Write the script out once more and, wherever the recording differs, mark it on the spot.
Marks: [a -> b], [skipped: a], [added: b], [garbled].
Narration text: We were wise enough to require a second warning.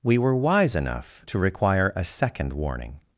We were wise enough to require a second warning.